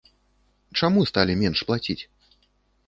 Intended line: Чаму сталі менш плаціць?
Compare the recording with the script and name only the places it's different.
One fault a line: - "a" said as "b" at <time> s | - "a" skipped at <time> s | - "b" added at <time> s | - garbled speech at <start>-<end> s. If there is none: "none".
none